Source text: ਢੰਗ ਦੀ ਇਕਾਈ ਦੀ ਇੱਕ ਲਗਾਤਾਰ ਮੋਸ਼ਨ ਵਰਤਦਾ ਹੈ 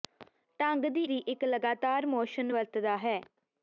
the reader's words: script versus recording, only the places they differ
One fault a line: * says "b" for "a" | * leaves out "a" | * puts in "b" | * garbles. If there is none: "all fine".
* leaves out "ਇਕਾਈ"